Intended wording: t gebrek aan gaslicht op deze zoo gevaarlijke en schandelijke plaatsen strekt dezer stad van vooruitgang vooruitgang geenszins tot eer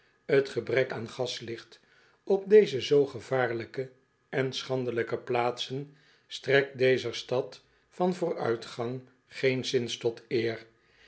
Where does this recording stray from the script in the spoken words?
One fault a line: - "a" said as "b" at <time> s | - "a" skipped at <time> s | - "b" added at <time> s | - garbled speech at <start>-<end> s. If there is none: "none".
- "vooruitgang" skipped at 9.0 s